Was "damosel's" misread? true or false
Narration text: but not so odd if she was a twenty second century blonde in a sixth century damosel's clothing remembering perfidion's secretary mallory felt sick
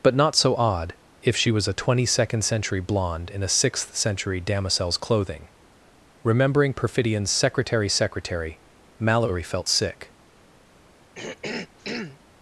false